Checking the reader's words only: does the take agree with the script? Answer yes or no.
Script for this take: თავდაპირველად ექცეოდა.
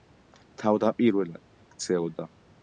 yes